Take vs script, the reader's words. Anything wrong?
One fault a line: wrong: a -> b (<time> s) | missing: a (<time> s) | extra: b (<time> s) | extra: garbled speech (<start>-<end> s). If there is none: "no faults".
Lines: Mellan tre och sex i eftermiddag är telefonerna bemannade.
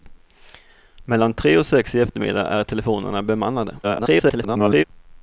extra: garbled speech (3.8-4.8 s)